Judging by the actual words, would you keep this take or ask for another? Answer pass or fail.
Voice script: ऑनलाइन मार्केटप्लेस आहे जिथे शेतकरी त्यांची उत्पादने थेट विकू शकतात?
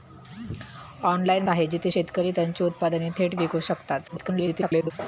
fail